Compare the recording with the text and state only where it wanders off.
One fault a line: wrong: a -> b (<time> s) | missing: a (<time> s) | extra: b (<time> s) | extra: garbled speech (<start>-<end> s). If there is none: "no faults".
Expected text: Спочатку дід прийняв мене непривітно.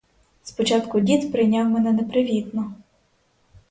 no faults